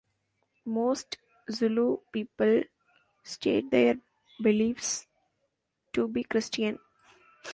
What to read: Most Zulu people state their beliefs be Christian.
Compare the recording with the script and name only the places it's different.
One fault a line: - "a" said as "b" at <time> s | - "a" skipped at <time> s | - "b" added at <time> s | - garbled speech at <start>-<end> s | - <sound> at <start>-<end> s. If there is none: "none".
- "to" added at 5.9 s